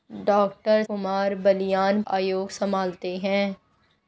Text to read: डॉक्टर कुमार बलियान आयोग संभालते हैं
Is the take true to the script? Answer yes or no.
yes